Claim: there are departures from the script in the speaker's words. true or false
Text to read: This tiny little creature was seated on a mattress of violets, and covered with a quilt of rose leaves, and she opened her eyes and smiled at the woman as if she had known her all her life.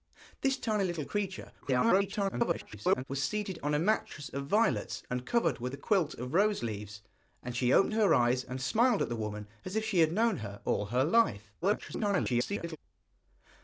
true